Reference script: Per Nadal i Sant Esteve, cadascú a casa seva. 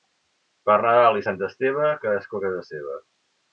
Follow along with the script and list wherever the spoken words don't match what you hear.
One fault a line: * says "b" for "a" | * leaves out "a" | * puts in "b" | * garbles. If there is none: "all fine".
all fine